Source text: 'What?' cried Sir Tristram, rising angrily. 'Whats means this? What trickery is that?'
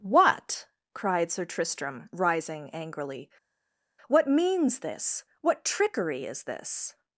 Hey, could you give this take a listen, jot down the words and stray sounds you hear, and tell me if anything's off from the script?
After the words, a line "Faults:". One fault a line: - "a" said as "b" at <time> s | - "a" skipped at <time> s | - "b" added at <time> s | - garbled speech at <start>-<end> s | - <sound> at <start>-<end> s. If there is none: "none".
'What?' cried Sir Tristram, rising angrily. 'What means this? What trickery is this?'
Faults:
- "Whats" said as "What" at 4.1 s
- "that" said as "this" at 6.4 s